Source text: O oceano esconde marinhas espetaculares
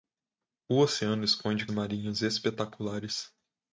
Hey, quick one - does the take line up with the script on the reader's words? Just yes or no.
yes